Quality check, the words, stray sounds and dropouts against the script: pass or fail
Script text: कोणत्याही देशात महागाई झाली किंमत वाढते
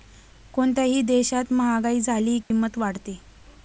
fail